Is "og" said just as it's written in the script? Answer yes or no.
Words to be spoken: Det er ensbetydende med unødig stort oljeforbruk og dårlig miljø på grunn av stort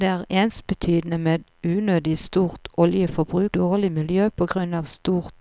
no